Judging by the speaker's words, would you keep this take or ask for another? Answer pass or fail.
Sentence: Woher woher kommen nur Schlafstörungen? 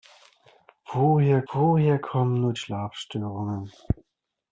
pass